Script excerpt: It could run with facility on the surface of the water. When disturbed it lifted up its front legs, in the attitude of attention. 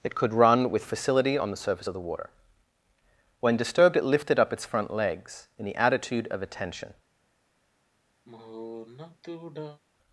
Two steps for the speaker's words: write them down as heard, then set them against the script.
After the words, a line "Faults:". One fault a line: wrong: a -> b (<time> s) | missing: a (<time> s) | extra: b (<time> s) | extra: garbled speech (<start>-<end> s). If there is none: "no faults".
It could run with facility on the surface of the water. When disturbed it lifted up its front legs, in the attitude of attention.
Faults:
no faults